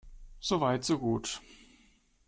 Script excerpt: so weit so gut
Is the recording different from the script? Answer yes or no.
no